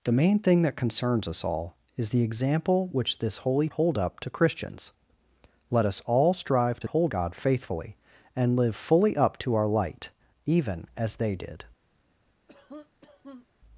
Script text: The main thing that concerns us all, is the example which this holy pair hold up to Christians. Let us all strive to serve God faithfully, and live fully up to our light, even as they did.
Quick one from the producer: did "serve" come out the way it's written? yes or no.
no